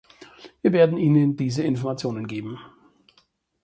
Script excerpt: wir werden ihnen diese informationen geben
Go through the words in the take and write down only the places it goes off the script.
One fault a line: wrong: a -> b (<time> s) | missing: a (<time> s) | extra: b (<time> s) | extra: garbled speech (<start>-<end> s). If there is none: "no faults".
no faults